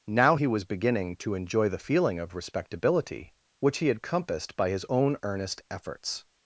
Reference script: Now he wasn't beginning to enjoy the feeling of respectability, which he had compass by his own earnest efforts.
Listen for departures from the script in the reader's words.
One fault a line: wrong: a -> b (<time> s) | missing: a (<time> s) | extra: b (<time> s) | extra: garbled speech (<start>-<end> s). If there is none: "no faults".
wrong: wasn't -> was (0.5 s)
wrong: compass -> compassed (4.0 s)